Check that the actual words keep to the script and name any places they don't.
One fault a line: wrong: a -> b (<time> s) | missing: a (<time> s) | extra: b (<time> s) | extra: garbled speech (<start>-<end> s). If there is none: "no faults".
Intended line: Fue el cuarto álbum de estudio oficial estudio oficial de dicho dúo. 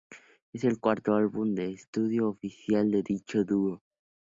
wrong: Fue -> Es (0.5 s)
missing: estudio oficial (2.9 s)